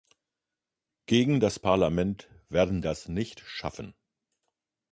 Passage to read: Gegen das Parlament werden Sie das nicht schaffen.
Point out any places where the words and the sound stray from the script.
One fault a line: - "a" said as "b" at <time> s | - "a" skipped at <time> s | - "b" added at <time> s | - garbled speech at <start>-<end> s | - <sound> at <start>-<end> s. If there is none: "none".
- "Sie" skipped at 2.8 s